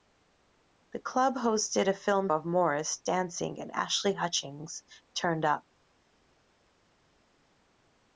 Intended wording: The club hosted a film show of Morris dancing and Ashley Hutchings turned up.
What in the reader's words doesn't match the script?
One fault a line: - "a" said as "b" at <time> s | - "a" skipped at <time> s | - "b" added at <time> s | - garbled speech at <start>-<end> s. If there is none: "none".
- "show" skipped at 2.3 s